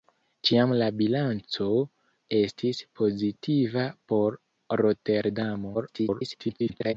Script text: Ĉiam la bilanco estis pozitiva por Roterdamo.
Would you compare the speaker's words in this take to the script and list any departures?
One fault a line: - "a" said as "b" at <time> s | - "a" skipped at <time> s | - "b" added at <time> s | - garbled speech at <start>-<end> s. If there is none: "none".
- garbled speech at 5.7-6.9 s